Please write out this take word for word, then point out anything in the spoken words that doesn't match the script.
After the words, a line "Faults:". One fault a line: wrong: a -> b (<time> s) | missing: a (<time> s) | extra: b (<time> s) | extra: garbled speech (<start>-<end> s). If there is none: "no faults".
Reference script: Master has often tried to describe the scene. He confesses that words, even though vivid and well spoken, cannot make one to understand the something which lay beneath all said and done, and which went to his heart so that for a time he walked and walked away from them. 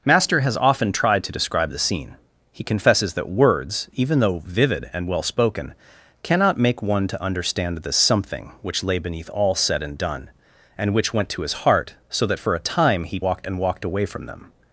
Master has often tried to describe the scene. He confesses that words, even though vivid and well spoken, cannot make one to understand the something which lay beneath all said and done, and which went to his heart so that for a time he walked and walked away from them.
Faults:
no faults